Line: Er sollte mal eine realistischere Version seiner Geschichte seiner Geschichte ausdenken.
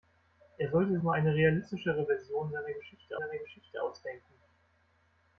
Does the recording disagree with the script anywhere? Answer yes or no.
no